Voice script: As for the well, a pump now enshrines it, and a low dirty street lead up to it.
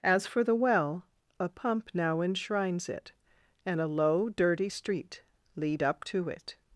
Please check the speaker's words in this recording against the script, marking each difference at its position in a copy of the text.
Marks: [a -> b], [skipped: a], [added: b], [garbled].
As for the well, a pump now enshrines it, and a low dirty street lead up to it.